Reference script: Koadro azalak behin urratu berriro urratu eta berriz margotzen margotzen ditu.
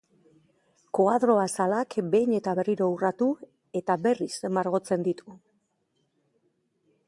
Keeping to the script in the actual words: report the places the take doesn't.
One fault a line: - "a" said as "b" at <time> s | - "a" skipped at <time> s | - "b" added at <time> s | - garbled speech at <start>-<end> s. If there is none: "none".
- "urratu" said as "eta" at 2.4 s
- "margotzen" skipped at 5.1 s